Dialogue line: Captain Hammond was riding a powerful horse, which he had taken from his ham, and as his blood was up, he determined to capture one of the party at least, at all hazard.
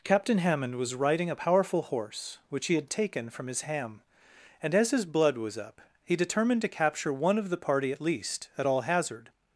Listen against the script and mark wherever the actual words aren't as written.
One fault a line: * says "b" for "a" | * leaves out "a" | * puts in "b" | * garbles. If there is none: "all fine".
all fine